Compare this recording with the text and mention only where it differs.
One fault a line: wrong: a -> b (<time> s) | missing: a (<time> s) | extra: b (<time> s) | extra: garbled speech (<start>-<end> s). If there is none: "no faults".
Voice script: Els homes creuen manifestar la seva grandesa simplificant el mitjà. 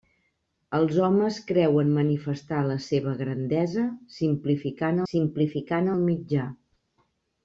extra: simplificant (5.1 s)